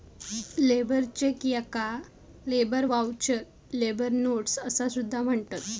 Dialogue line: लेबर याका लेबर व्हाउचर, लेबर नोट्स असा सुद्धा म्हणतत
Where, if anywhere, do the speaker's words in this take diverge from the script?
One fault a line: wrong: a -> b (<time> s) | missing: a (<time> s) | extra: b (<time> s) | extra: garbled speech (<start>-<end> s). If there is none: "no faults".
extra: चेक (1.2 s)